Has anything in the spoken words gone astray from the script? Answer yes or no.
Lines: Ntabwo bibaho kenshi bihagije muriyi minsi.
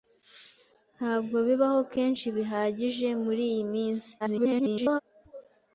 yes